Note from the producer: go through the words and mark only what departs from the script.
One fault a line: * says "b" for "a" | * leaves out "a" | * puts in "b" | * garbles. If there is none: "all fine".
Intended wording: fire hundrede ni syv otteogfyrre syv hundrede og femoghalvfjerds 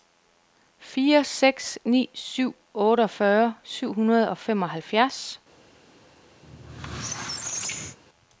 * says "seks" for "hundrede"